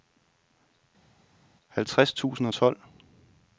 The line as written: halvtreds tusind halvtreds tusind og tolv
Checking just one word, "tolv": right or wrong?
right